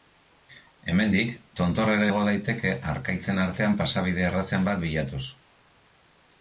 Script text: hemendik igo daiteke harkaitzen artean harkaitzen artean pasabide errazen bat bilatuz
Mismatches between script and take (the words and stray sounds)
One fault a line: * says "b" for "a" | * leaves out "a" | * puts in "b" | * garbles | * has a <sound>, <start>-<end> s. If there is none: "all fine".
* puts in "tontorrera"
* leaves out "harkaitzen artean"